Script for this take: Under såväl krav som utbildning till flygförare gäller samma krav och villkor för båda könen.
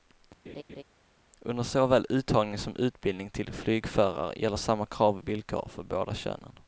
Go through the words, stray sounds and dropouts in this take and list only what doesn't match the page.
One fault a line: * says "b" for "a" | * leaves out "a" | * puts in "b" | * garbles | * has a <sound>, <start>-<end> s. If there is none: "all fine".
* has a laugh, 0.5-0.8 s
* says "uttagning" for "krav"